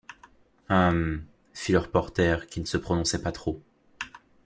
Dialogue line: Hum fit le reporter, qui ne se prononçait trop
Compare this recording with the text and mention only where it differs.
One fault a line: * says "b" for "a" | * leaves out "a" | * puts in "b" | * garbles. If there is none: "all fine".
* puts in "pas"